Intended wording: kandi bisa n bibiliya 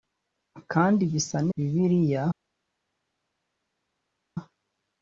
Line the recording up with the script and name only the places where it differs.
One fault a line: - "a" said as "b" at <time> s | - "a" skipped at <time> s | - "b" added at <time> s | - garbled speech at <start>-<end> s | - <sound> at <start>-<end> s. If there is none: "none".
none